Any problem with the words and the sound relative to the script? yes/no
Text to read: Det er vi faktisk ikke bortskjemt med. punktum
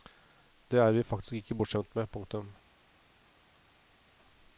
no